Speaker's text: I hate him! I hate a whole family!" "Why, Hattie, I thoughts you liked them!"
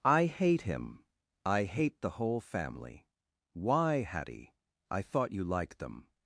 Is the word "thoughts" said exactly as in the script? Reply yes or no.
no